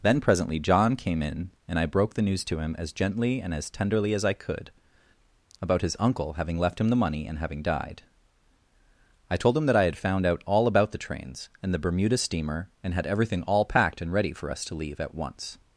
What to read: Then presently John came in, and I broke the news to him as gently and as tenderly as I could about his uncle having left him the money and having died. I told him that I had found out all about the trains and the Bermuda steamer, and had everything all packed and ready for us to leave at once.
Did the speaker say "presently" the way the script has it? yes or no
yes